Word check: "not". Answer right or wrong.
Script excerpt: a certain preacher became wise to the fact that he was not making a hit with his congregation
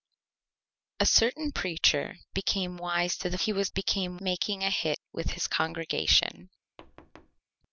wrong